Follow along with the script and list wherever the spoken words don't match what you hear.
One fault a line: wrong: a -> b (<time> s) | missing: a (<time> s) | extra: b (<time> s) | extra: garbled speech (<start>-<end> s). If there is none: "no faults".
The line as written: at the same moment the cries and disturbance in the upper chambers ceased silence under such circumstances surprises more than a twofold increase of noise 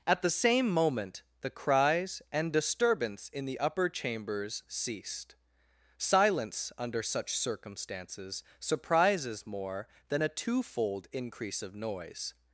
no faults